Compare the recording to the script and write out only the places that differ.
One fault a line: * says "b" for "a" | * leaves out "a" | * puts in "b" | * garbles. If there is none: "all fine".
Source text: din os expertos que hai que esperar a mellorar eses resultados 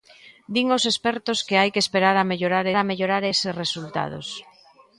* puts in "a mellorar"